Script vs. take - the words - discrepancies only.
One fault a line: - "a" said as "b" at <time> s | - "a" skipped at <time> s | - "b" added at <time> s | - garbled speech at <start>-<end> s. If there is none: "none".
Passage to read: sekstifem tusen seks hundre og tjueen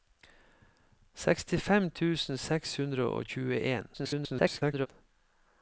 - garbled speech at 3.9-4.9 s